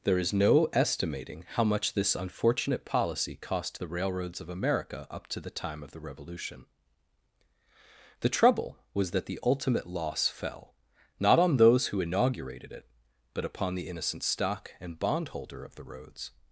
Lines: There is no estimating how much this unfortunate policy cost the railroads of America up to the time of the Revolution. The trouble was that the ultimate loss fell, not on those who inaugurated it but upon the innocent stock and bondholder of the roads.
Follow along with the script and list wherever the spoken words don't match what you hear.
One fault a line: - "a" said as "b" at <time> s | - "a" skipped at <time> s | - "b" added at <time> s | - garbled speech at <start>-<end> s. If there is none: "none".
none